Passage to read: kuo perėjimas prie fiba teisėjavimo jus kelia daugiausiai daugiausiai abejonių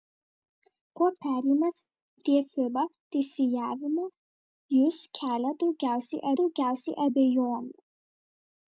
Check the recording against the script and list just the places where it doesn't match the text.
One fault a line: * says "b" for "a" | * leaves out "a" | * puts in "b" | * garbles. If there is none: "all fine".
all fine